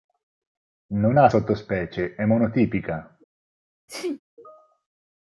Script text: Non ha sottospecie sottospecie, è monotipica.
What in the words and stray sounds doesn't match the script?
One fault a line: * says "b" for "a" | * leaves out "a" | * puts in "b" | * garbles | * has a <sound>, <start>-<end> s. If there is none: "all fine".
* leaves out "sottospecie"
* has a sneeze, 3.9-4.2 s